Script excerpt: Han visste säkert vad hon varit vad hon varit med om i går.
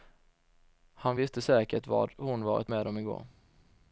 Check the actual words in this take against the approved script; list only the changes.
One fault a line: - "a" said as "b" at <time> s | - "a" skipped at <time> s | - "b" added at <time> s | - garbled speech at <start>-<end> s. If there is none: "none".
- "vad hon varit" skipped at 2.7 s